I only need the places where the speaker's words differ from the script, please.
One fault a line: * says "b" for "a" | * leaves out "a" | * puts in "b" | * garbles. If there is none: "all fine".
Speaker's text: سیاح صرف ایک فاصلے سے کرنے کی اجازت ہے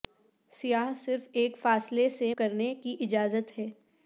all fine